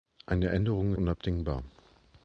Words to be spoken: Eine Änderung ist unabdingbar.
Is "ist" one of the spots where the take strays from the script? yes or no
yes